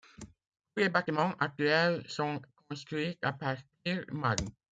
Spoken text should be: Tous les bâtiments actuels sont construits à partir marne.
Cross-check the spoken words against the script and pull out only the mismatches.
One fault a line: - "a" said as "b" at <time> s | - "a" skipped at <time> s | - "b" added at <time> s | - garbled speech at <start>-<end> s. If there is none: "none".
none